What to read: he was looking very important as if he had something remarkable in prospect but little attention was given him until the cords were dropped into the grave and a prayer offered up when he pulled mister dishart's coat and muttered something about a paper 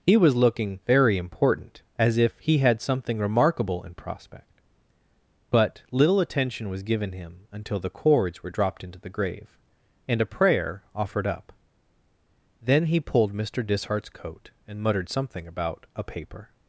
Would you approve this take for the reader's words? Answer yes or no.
no